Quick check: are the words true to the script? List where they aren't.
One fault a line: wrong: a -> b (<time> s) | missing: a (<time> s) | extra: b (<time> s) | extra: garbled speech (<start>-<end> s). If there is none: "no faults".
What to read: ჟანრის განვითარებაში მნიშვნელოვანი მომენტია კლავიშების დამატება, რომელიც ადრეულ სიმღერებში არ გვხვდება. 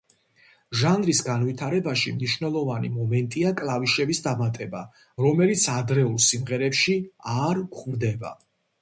no faults